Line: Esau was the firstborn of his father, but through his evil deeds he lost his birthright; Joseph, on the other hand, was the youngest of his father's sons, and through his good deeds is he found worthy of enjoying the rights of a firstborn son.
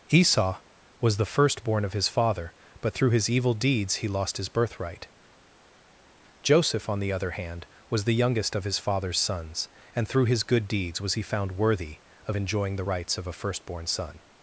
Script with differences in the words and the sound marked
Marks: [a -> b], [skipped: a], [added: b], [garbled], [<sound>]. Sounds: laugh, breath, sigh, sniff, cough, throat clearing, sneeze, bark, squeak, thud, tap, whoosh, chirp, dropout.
Esau was the firstborn of his father, but through his evil deeds he lost his birthright; Joseph, on the other hand, was the youngest of his father's sons, and through his good deeds [is -> was] he found worthy of enjoying the rights of a firstborn son.